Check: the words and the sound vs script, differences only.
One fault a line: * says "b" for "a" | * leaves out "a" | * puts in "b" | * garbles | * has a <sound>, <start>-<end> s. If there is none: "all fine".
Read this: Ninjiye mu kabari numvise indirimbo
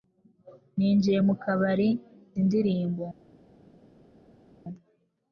* leaves out "numvise"